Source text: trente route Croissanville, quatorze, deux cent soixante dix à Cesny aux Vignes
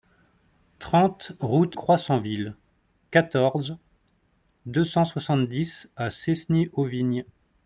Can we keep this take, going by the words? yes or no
yes